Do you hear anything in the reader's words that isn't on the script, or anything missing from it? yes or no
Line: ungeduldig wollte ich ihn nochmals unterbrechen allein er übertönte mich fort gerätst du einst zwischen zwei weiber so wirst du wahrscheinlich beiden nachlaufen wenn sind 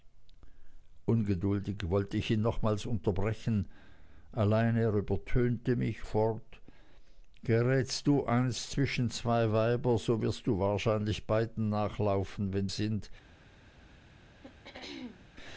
no